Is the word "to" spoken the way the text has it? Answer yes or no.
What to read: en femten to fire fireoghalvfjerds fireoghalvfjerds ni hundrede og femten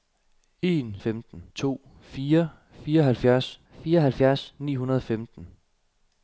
yes